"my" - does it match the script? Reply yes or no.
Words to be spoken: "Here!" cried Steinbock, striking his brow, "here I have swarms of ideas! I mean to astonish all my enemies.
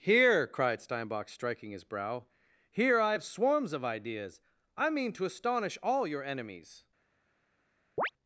no